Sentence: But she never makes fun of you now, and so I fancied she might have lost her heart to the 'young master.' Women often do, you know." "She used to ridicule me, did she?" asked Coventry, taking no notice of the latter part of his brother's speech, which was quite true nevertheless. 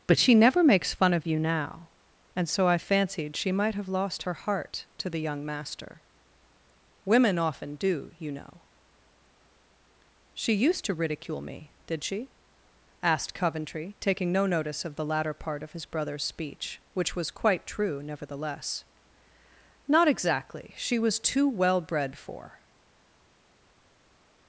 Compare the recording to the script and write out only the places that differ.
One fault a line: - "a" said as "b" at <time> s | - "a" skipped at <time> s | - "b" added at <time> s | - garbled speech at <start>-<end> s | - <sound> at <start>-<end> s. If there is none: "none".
- "Not exactly she was too well bred for" added at 19.9 s